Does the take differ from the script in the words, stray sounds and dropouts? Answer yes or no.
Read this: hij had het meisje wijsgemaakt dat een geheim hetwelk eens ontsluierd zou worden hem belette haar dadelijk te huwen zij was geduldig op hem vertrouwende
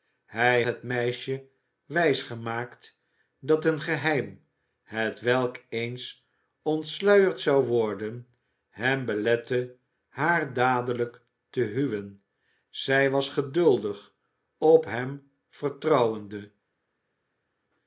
yes